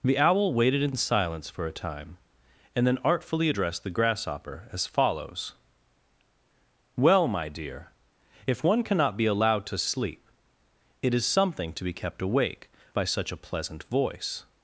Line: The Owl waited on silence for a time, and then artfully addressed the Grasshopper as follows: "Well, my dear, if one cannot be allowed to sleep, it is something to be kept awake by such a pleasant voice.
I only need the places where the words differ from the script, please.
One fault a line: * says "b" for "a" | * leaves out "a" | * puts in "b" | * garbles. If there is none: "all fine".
* says "in" for "on"